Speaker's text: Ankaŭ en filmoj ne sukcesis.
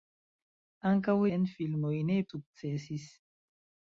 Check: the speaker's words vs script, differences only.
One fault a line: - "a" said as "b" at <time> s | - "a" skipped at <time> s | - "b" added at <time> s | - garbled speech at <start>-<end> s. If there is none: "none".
none